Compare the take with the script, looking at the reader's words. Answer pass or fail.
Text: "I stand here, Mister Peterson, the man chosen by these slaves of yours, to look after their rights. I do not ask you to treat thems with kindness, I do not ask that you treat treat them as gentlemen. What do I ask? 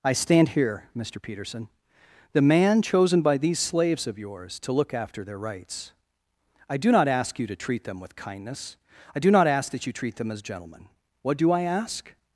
fail